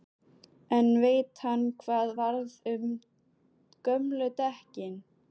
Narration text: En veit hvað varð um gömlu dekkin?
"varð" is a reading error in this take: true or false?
false